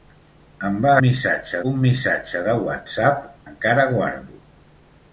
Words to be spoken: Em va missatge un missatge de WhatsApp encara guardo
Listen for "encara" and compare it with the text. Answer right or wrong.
right